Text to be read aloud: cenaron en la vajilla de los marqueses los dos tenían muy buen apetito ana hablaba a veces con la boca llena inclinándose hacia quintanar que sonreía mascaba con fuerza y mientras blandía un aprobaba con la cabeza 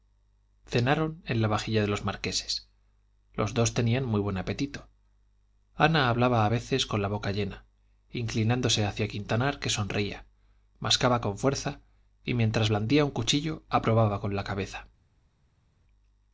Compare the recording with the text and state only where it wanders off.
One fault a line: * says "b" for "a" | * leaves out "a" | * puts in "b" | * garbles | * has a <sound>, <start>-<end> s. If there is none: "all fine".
* puts in "cuchillo"